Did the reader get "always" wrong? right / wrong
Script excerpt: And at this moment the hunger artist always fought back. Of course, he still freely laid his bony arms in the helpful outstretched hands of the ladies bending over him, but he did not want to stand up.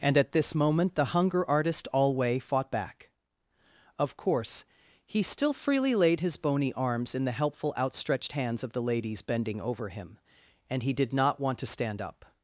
wrong